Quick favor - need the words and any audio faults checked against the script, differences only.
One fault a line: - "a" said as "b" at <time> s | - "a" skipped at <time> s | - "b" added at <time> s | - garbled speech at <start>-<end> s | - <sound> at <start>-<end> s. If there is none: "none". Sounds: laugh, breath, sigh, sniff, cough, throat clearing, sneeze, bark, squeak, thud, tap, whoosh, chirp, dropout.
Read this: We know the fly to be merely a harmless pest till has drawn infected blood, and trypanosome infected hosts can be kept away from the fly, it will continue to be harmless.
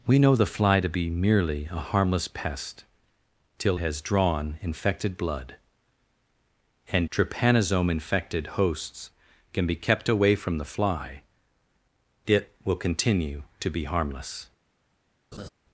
- laugh at 15.3-15.5 s